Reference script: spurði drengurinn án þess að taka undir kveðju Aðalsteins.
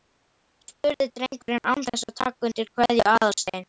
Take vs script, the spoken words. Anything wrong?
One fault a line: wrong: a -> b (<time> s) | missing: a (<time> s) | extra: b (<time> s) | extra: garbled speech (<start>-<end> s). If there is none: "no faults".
no faults